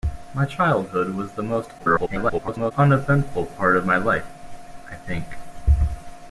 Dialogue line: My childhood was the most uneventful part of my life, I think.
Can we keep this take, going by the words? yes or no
no